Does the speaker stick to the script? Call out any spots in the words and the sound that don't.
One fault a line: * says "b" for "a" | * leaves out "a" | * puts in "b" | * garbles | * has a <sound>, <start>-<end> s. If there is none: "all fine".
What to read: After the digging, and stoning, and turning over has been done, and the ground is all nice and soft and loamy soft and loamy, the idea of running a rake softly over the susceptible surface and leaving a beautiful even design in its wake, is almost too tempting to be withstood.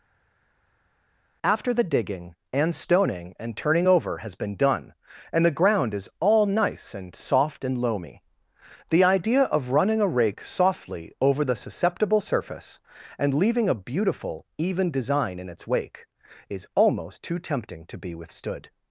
* leaves out "soft and loamy"